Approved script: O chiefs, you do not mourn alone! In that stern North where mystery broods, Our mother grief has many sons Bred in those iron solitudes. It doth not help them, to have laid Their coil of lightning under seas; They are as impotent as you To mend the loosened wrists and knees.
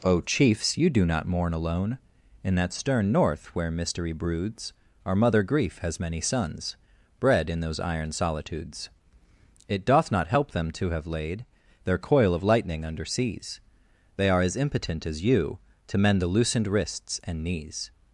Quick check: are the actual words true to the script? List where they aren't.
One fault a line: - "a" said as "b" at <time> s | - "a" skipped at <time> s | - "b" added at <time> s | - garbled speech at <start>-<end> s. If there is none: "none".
none